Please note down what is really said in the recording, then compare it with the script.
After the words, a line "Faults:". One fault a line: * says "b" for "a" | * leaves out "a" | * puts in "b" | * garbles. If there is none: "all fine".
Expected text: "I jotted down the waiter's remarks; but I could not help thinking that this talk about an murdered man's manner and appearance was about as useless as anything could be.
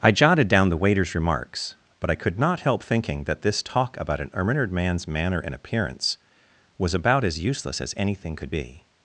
"I jotted down the waiter's remarks; but I could not help thinking that this talk about an murdered man's manner and appearance was about as useless as anything could be.
Faults:
all fine